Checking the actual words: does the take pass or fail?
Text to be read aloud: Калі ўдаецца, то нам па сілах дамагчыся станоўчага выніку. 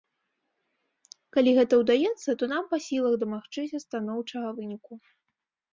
fail